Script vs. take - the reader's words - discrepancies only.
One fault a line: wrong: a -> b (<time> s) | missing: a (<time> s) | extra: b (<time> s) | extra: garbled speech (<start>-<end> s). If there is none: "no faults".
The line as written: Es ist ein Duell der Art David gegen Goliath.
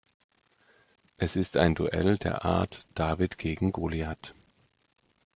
no faults